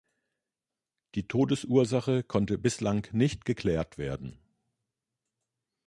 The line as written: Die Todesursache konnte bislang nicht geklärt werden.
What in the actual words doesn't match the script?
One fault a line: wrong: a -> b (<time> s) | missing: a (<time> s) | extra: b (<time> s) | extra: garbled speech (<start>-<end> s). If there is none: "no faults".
no faults